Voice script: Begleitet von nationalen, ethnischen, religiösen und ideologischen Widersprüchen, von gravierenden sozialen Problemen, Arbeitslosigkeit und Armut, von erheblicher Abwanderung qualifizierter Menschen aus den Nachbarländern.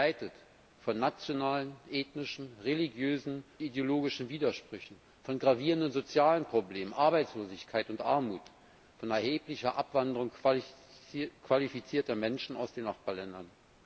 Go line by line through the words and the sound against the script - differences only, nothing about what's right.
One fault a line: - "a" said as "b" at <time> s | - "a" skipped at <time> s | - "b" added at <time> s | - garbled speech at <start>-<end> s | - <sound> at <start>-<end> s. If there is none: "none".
- "und" skipped at 3.5 s